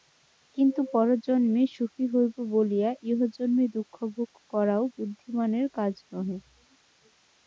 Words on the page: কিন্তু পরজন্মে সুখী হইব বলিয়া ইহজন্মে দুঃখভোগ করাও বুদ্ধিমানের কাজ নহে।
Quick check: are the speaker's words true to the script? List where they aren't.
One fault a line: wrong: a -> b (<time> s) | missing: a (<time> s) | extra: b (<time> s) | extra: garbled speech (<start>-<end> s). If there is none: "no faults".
no faults